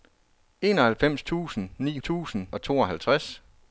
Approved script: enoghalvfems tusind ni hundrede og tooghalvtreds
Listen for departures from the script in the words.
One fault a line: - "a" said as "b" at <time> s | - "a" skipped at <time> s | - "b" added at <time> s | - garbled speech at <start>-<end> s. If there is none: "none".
- "hundrede" said as "tusind" at 2.0 s